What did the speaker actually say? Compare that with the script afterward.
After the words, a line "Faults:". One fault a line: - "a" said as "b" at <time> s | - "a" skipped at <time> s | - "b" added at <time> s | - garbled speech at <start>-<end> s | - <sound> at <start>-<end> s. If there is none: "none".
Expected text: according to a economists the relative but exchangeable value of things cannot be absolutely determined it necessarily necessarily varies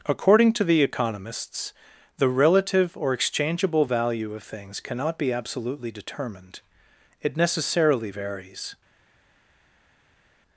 according to the economists the relative or exchangeable value of things cannot be absolutely determined it necessarily varies
Faults:
- "a" said as "the" at 0.6 s
- "but" said as "or" at 3.0 s
- "necessarily" skipped at 8.1 s